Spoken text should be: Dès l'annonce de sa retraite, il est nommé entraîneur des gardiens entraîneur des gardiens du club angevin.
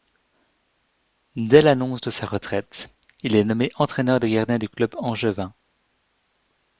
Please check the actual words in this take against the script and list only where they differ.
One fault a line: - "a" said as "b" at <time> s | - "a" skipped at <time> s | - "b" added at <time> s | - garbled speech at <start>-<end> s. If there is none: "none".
- "entraîneur des gardiens" skipped at 4.6 s